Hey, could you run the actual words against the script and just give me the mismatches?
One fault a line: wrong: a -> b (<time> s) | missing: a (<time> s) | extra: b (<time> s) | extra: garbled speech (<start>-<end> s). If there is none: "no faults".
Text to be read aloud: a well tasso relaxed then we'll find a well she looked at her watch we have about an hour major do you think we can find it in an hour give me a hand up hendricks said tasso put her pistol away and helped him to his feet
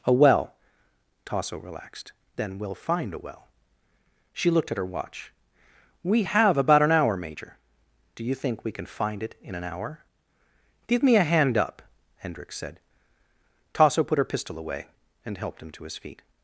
no faults